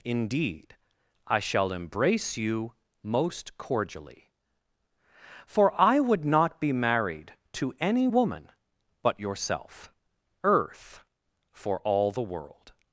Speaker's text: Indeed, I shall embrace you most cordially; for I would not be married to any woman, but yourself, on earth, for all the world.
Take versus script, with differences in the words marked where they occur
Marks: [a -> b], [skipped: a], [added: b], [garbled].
Indeed, I shall embrace you most cordially; for I would not be married to any woman, but yourself, [skipped: on] earth, for all the world.